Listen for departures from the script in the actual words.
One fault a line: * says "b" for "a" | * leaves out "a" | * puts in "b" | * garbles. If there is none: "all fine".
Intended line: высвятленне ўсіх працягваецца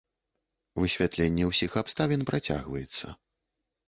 * puts in "абставін"